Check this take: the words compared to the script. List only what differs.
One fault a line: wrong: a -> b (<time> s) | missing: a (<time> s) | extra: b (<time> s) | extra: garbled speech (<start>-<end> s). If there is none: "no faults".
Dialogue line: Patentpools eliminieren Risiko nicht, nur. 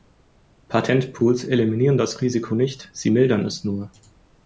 extra: das (2.0 s)
extra: sie mildern es (2.9 s)